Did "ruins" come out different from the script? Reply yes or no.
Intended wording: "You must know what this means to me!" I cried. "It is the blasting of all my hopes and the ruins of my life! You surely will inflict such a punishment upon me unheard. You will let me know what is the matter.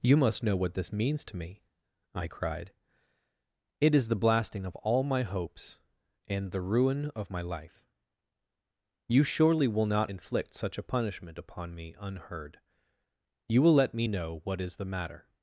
yes